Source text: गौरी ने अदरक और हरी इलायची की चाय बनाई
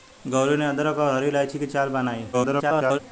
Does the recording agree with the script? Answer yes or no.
no